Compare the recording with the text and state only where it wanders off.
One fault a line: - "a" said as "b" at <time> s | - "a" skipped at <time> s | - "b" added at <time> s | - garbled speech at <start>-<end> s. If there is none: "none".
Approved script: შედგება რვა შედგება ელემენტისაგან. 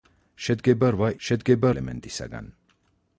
none